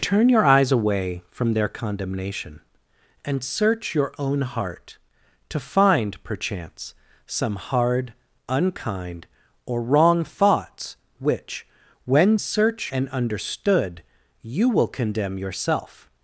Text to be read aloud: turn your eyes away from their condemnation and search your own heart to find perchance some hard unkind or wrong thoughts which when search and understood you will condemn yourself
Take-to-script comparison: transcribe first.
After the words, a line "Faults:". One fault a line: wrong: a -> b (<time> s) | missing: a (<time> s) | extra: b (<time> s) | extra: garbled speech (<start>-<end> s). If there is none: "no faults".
turn your eyes away from their condemnation and search your own heart to find perchance some hard unkind or wrong thoughts which when search and understood you will condemn yourself
Faults:
no faults